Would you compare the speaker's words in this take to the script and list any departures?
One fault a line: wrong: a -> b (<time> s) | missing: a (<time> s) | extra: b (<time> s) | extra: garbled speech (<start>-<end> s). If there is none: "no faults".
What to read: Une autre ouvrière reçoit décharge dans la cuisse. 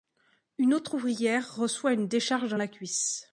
extra: une (1.9 s)